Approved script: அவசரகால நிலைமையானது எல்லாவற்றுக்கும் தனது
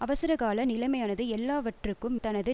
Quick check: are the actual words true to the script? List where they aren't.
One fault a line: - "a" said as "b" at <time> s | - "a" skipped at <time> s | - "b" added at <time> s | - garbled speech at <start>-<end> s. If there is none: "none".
none